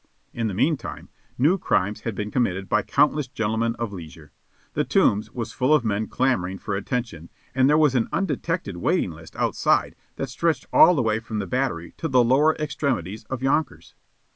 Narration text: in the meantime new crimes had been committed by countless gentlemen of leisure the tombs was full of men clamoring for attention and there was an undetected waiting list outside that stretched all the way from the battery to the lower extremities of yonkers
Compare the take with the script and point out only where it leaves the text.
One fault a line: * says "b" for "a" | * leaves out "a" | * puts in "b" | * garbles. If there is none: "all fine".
all fine